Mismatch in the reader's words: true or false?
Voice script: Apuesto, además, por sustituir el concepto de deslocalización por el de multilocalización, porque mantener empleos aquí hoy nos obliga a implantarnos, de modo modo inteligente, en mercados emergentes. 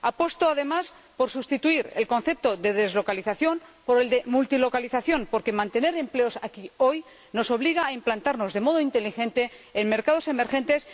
true